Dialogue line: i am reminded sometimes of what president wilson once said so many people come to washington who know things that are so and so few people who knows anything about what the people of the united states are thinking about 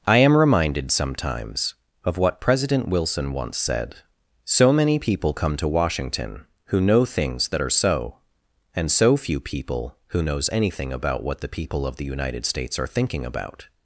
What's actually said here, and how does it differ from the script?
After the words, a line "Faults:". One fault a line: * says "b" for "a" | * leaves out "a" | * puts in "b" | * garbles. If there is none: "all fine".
i am reminded sometimes of what president wilson once said so many people come to washington who know things that are so and so few people who knows anything about what the people of the united states are thinking about
Faults:
all fine